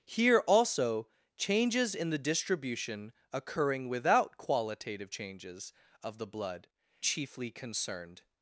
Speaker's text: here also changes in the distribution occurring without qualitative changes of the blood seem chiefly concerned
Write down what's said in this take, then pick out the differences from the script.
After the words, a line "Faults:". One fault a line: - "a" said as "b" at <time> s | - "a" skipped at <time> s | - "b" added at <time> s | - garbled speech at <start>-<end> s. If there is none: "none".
here also changes in the distribution occurring without qualitative changes of the blood chiefly concerned
Faults:
- "seem" skipped at 6.7 s